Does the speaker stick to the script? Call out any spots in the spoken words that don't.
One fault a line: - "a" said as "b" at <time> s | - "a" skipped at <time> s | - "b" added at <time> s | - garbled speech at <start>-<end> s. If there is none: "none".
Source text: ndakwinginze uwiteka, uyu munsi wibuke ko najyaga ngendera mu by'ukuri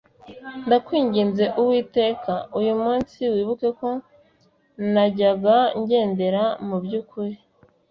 none